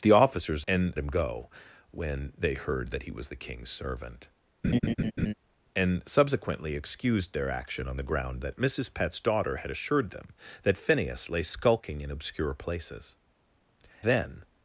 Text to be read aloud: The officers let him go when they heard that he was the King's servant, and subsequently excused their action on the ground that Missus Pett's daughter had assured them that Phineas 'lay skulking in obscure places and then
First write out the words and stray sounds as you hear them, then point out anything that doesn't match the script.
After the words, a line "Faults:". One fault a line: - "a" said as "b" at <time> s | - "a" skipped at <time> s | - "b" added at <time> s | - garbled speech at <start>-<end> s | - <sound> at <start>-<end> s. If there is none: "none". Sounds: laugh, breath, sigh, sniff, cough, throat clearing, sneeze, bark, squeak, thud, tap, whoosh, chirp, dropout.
The officers and him go when they heard that he was the King's servant, and subsequently excused their action on the ground that Missus Pett's daughter had assured them that Phineas 'lay skulking in obscure places then
Faults:
- "let" said as "and" at 0.7 s
- laugh at 4.6-5.3 s
- "and" skipped at 13.2 s